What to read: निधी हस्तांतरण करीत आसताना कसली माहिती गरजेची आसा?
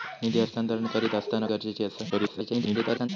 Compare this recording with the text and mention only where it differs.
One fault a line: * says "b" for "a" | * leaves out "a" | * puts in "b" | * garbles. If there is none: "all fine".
* leaves out "कसली माहिती"
* garbles